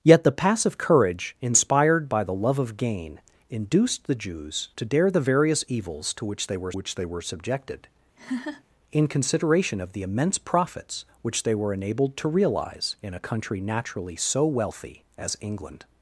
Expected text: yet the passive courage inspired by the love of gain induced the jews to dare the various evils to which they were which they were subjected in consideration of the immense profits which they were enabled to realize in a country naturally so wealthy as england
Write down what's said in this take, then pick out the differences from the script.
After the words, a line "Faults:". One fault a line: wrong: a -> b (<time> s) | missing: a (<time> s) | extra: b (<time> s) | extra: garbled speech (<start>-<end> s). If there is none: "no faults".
yet the passive courage inspired by the love of gain induced the jews to dare the various evils to which they were which they were subjected in consideration of the immense profits which they were enabled to realize in a country naturally so wealthy as england
Faults:
no faults